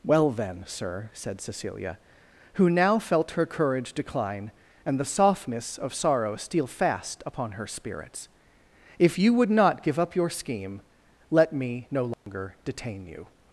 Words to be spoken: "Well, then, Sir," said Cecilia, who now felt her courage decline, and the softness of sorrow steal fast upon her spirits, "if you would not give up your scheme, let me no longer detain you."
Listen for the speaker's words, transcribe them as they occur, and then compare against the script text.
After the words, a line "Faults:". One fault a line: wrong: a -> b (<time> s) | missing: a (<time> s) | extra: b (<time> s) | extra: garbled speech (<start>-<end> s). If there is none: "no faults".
"Well, then, Sir," said Cecilia, who now felt her courage decline, and the softness of sorrow steal fast upon her spirits, "if you would not give up your scheme, let me no longer detain you."
Faults:
no faults